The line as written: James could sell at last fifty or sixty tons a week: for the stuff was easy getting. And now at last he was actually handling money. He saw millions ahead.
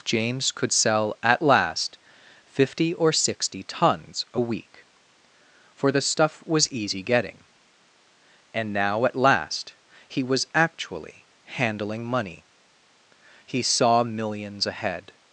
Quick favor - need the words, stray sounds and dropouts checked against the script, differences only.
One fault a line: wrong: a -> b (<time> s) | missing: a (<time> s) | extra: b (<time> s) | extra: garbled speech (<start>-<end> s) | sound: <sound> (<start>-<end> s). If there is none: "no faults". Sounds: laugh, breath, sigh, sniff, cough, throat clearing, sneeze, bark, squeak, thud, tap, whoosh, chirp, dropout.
no faults